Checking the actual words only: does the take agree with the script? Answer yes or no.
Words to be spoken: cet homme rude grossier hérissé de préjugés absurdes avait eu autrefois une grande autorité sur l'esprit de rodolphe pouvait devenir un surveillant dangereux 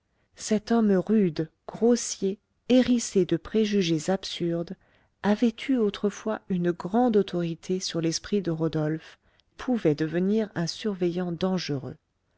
yes